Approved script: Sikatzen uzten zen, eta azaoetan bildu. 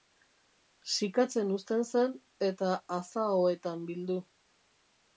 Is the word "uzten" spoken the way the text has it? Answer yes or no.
yes